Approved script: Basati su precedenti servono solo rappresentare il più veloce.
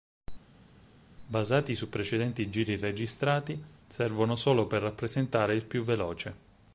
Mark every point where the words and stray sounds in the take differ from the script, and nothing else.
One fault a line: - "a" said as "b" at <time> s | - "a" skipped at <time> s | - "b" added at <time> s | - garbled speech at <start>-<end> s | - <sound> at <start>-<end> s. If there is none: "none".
- "giri registrati" added at 2.5 s
- "per" added at 4.7 s